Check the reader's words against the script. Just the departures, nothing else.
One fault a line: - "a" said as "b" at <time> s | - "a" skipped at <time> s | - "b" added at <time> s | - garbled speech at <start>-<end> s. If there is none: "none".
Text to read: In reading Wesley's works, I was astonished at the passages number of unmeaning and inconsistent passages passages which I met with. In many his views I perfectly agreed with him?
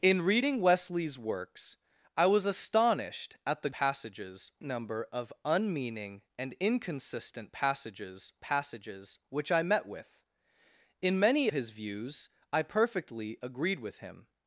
none